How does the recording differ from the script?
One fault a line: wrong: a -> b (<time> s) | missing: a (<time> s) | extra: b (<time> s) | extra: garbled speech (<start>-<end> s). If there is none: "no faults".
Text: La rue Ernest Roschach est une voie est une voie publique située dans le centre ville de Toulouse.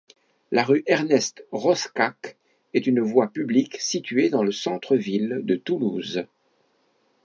missing: est une voie (3.3 s)